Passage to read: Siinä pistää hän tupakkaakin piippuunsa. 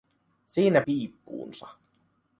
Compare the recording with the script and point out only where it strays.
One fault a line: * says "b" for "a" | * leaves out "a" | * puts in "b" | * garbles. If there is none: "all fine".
* leaves out "pistää hän tupakkaakin"